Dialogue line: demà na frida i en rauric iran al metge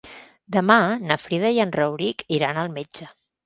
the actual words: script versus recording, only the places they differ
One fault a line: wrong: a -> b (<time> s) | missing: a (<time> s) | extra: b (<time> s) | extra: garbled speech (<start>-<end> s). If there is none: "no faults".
no faults